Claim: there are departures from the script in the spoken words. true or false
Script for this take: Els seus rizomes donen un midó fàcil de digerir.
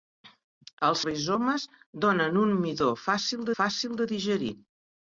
true